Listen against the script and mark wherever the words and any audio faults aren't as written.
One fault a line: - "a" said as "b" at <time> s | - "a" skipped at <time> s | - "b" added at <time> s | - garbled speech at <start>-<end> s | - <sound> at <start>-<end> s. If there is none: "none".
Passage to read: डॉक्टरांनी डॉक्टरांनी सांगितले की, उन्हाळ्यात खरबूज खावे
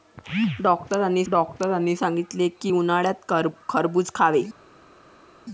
none